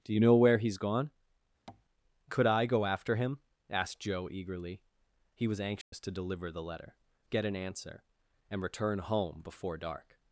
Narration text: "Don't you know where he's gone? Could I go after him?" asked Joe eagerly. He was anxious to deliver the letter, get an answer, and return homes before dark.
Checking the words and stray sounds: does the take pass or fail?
fail